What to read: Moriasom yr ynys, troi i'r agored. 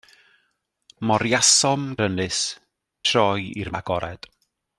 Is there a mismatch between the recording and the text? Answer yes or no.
no